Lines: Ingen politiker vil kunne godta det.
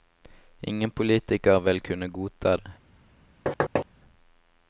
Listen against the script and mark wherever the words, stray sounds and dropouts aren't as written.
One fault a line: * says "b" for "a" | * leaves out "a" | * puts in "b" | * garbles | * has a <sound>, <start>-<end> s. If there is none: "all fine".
* has a thud, 3.5-3.9 s